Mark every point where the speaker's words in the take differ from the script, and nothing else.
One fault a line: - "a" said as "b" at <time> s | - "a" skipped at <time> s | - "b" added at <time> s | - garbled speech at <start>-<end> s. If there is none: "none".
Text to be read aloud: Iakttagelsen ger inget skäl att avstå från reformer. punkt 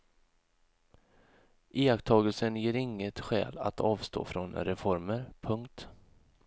none